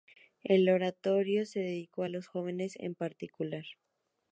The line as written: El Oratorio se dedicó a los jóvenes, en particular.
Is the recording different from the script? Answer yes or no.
no